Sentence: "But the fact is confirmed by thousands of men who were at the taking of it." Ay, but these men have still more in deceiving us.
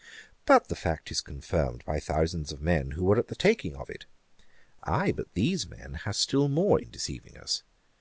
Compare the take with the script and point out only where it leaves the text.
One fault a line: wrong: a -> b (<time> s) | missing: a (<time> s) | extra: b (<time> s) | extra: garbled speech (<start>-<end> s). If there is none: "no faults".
no faults